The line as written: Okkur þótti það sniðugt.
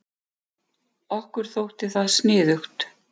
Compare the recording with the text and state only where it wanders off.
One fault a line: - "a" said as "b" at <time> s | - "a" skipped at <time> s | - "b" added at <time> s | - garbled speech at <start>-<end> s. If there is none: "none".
none